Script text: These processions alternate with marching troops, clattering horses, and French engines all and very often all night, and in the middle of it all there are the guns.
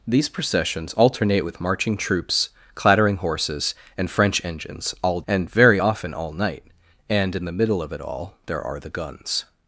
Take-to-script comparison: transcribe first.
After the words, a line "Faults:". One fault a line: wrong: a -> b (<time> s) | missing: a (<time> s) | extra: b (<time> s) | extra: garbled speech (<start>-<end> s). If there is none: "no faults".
These processions alternate with marching troops, clattering horses, and French engines all and very often all night, and in the middle of it all there are the guns.
Faults:
no faults